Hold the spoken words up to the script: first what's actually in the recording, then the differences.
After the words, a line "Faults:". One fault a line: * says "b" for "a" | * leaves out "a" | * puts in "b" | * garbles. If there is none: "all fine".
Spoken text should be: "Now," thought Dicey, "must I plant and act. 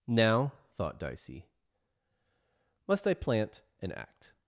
"Now," thought Dicey, "must I plant and act.
Faults:
all fine